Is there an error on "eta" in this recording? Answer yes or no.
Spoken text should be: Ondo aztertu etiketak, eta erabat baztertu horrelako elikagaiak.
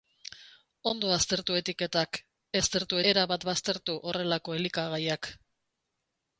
yes